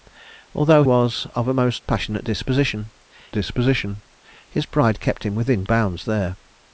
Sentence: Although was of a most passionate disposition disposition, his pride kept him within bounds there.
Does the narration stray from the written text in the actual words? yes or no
no